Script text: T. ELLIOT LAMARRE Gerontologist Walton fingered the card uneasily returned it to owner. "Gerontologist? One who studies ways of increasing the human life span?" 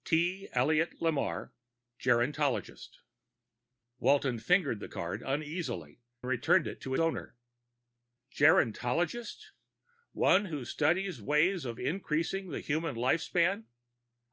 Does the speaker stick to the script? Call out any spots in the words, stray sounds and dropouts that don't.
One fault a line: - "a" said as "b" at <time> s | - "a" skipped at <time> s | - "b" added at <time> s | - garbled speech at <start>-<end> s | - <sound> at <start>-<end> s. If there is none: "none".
none